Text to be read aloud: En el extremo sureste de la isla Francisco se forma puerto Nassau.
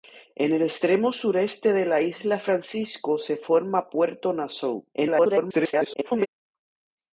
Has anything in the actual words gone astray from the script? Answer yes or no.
yes